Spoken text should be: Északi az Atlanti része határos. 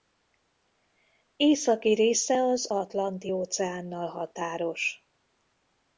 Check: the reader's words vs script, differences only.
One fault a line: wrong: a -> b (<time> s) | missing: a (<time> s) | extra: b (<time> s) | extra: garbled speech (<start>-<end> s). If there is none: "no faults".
extra: része (1.9 s)
wrong: része -> óceánnal (3.3 s)